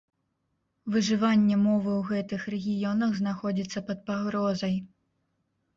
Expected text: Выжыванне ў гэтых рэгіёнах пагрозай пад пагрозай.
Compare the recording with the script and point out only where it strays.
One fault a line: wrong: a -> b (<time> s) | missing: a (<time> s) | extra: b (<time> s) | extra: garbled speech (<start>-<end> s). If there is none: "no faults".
extra: мовы (1.7 s)
wrong: пагрозай -> знаходзіцца (3.2 s)